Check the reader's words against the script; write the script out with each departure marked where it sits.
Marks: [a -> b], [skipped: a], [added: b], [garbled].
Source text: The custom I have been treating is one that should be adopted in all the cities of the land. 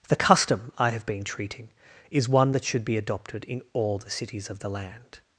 The custom I have been treating is one that should be adopted in all the cities of the land.